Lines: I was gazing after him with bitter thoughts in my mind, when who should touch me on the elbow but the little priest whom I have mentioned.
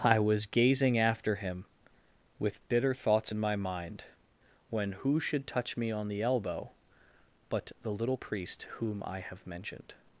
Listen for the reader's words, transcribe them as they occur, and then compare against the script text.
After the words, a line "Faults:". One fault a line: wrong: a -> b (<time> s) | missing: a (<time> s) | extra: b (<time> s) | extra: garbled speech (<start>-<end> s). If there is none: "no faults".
I was gazing after him with bitter thoughts in my mind, when who should touch me on the elbow but the little priest whom I have mentioned.
Faults:
no faults